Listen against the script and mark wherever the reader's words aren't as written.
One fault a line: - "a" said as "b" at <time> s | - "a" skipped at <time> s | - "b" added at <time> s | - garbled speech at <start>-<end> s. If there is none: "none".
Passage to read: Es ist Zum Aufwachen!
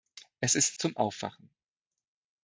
none